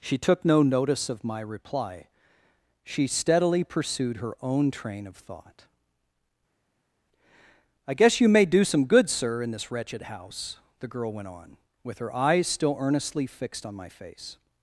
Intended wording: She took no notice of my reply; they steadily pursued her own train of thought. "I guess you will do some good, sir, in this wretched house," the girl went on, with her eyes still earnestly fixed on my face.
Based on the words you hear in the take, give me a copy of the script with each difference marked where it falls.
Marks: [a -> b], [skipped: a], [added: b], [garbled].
She took no notice of my reply; [they -> she] steadily pursued her own train of thought. "I guess you [will -> may] do some good, sir, in this wretched house," the girl went on, with her eyes still earnestly fixed on my face.